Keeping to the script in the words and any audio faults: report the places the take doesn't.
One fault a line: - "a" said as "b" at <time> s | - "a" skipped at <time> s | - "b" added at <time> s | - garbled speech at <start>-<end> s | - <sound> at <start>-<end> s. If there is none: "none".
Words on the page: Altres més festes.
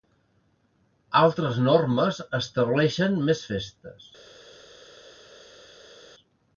- "normes estableixen" added at 1.7 s